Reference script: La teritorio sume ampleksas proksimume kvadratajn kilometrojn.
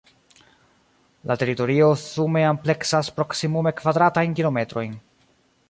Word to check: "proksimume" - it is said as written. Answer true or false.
true